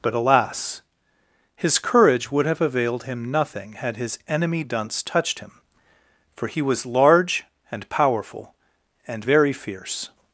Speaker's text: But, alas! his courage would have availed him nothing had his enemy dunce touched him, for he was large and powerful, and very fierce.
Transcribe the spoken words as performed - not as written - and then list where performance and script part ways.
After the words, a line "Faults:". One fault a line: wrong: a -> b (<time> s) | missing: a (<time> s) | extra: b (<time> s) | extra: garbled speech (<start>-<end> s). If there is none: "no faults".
But, alas! his courage would have availed him nothing had his enemy dunce touched him, for he was large and powerful, and very fierce.
Faults:
no faults